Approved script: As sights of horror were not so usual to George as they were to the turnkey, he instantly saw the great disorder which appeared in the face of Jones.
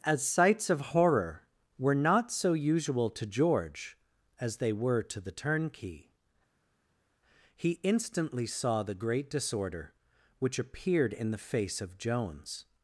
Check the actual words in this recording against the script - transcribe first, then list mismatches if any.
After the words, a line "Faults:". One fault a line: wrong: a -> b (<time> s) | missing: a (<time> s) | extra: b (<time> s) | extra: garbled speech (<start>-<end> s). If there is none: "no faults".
As sights of horror were not so usual to George as they were to the turnkey, he instantly saw the great disorder which appeared in the face of Jones.
Faults:
no faults